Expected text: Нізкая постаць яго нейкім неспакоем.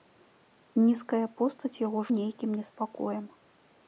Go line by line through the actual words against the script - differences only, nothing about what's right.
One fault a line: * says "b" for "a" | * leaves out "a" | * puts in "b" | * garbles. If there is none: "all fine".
all fine